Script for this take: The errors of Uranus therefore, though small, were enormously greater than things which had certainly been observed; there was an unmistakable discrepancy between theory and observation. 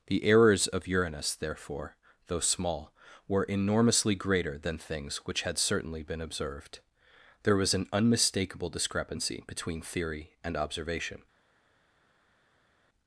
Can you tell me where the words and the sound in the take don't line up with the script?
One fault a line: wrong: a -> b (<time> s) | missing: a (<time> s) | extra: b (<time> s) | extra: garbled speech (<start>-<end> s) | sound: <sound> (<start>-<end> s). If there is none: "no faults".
no faults